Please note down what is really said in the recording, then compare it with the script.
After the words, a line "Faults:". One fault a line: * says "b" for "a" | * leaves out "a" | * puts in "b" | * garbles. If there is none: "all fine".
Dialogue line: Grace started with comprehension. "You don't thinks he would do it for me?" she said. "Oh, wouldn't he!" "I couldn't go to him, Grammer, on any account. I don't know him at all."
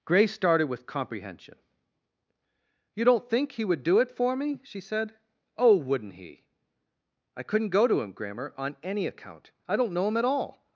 Grace started with comprehension. "You don't think he would do it for me?" she said. "Oh, wouldn't he!" "I couldn't go to him, Grammer, on any account. I don't know him at all."
Faults:
* says "think" for "thinks"